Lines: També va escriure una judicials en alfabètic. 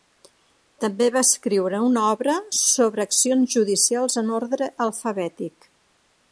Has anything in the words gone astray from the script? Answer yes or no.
yes